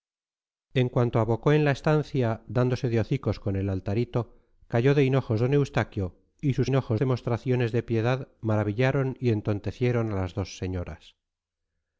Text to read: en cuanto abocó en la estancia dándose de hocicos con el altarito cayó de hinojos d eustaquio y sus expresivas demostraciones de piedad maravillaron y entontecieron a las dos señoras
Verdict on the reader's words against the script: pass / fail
fail